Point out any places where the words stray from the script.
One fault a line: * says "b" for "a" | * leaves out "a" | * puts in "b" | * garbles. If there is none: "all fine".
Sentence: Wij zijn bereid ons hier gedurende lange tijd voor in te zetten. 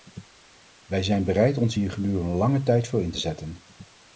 all fine